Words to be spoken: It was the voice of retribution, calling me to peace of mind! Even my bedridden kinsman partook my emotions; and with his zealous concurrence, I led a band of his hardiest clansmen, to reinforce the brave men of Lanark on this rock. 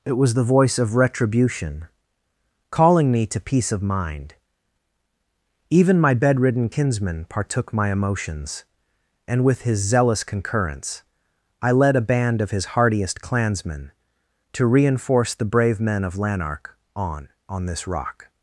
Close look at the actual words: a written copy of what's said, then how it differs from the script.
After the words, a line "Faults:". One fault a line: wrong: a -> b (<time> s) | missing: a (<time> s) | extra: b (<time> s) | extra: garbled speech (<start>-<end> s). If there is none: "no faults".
It was the voice of retribution, calling me to peace of mind! Even my bedridden kinsman partook my emotions; and with his zealous concurrence, I led a band of his hardiest clansmen, to reinforce the brave men of Lanark on on this rock.
Faults:
extra: on (17.5 s)